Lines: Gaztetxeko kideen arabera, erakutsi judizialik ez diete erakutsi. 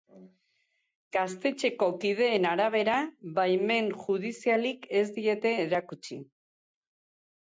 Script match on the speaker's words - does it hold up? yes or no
no